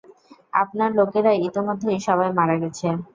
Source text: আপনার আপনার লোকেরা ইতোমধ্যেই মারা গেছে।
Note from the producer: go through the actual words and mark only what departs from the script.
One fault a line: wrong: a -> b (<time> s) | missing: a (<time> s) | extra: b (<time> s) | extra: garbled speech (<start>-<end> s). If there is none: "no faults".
missing: আপনার (0.9 s)
extra: সবাই (2.1 s)